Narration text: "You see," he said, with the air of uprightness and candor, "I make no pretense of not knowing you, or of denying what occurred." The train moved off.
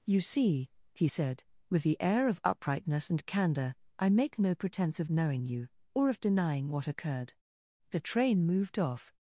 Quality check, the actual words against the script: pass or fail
fail